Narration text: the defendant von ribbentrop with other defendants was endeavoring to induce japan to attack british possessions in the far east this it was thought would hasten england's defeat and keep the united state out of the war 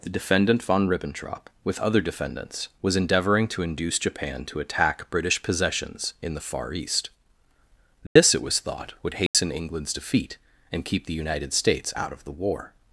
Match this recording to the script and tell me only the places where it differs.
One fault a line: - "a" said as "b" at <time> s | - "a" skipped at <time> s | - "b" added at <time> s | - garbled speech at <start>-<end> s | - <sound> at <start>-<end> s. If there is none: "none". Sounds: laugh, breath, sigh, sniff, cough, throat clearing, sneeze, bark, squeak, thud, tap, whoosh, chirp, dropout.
- dropout at 8.1-8.2 s
- dropout at 9.3-9.3 s
- "state" said as "states" at 11.5 s